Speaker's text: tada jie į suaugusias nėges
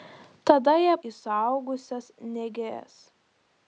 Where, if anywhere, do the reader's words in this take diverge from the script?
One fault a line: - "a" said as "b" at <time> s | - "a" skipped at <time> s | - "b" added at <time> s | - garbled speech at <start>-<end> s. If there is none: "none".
none